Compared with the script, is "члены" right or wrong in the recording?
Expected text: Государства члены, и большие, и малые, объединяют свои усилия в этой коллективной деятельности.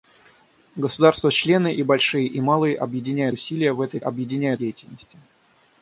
right